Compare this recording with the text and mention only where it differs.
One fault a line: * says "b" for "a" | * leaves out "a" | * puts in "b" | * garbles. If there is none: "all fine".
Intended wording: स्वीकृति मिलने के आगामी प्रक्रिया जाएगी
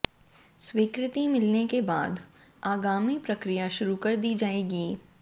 * puts in "बाद"
* puts in "शुरू कर दी"